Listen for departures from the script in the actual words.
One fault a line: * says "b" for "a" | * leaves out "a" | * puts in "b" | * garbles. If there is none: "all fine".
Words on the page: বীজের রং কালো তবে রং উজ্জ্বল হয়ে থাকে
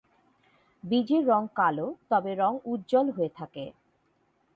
all fine